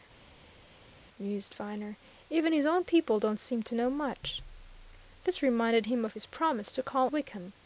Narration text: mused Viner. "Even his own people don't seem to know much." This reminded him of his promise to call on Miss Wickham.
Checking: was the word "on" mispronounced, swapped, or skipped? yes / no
yes